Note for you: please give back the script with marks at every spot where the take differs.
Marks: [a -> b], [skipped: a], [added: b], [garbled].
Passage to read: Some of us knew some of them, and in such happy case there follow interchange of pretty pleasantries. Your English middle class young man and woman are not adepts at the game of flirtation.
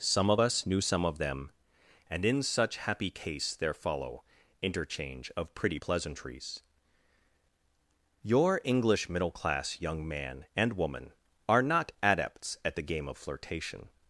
Some of us knew some of them, and in such happy case there follow interchange of pretty pleasantries. Your English middle class young man and woman are not adepts at the game of flirtation.